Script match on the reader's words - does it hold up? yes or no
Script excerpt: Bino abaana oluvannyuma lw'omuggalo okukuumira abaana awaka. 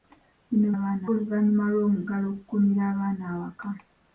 yes